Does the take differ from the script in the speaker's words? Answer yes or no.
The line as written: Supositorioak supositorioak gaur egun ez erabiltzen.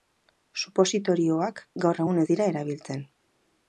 yes